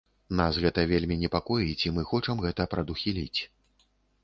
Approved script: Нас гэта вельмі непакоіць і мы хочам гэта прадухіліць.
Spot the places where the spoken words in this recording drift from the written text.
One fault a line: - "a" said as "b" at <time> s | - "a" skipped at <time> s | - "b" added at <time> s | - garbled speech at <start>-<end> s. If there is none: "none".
none